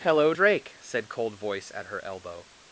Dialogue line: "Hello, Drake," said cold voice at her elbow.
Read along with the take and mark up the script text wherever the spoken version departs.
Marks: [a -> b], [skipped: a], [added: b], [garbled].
"Hello, Drake," said cold voice at her elbow.